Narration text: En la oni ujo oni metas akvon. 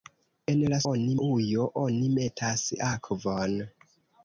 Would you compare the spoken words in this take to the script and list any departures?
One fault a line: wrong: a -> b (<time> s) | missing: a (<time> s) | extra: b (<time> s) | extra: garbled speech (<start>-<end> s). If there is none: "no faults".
no faults